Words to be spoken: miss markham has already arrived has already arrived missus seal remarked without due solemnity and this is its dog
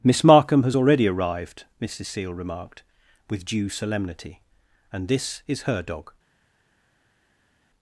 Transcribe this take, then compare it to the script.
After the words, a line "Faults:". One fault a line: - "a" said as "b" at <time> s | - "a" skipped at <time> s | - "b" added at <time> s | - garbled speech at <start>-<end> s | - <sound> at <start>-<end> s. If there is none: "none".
miss markham has already arrived missus seal remarked with due solemnity and this is her dog
Faults:
- "has already arrived" skipped at 1.6 s
- "without" said as "with" at 3.3 s
- "its" said as "her" at 5.6 s